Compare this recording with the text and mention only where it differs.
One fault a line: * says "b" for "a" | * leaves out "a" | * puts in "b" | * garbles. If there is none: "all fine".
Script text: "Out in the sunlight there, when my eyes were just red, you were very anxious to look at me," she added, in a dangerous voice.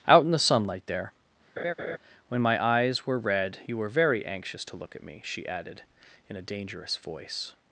* leaves out "just"